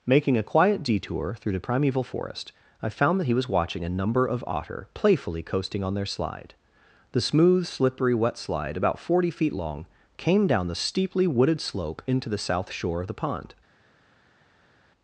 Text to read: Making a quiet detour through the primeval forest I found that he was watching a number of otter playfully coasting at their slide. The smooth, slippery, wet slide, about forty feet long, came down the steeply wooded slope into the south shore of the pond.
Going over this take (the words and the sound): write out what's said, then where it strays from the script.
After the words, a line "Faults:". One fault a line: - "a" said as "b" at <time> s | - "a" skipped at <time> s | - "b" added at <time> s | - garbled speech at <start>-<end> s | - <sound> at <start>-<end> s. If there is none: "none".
Making a quiet detour through the primeval forest I found that he was watching a number of otter playfully coasting on their slide. The smooth, slippery, wet slide, about forty feet long, came down the steeply wooded slope into the south shore of the pond.
Faults:
- "at" said as "on" at 5.8 s